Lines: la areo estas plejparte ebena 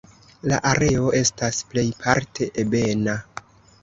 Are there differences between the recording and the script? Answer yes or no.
no